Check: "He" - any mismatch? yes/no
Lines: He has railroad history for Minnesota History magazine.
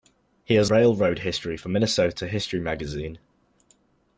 no